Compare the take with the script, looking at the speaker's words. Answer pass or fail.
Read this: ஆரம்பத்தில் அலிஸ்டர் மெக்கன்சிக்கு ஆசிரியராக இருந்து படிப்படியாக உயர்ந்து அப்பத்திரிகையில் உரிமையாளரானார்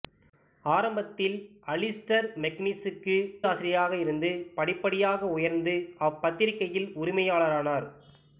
pass